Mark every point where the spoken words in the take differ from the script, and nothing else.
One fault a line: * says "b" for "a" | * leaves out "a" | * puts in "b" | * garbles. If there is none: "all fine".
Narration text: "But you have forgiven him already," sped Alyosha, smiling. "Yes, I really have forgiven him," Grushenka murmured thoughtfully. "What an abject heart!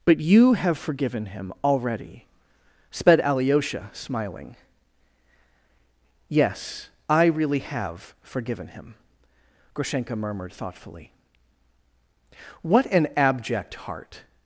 all fine